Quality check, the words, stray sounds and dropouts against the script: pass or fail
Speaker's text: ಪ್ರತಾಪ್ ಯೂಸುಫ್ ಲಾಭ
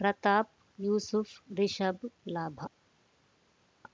fail